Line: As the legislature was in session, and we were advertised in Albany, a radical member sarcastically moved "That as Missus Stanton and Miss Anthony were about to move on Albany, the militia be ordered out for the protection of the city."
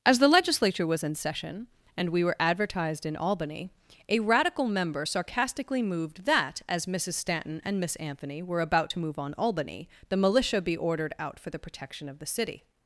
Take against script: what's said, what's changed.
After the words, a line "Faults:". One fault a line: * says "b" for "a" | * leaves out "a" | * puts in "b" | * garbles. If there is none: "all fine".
As the legislature was in session, and we were advertised in Albany, a radical member sarcastically moved "That as Missus Stanton and Miss Anthony were about to move on Albany, the militia be ordered out for the protection of the city."
Faults:
all fine